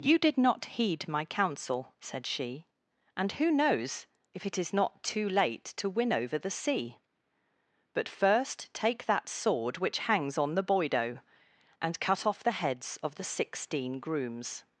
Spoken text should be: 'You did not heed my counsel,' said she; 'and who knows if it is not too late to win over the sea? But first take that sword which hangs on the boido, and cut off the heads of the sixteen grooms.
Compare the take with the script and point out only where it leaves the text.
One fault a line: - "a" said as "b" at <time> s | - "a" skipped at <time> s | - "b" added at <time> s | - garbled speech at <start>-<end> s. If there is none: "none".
none